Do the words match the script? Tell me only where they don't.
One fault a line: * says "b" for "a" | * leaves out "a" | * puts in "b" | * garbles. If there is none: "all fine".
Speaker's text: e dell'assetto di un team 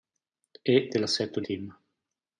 * leaves out "un"